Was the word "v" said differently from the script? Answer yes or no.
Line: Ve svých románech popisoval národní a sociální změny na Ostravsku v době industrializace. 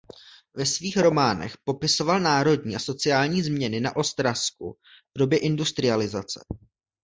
no